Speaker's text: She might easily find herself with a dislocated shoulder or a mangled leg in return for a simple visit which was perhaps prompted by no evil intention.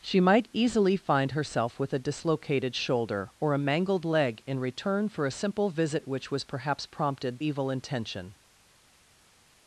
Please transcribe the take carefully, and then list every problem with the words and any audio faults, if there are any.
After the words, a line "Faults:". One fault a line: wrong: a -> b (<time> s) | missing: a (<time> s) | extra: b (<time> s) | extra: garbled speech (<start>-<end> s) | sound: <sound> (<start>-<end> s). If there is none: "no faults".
She might easily find herself with a dislocated shoulder or a mangled leg in return for a simple visit which was perhaps prompted evil intention.
Faults:
missing: by no (7.4 s)